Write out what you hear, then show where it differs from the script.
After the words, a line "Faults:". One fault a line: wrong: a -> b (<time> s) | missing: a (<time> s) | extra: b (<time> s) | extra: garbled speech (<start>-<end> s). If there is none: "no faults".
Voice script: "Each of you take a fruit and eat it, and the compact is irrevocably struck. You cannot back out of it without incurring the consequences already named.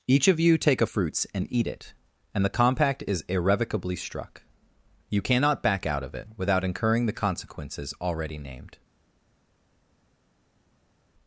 "Each of you take a fruits and eat it, and the compact is irrevocably struck. You cannot back out of it without incurring the consequences already named.
Faults:
wrong: fruit -> fruits (0.8 s)